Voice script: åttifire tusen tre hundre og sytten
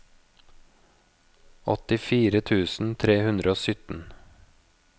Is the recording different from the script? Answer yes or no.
no